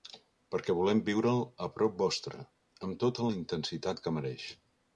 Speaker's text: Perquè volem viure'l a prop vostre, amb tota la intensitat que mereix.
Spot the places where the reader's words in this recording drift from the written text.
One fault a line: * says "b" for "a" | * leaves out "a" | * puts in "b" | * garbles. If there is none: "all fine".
all fine